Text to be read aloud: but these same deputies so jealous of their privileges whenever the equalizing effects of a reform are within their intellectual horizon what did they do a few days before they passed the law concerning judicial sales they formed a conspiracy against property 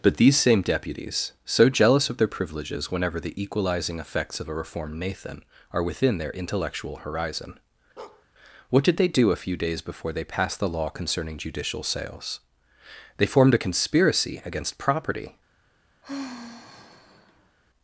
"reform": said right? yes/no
no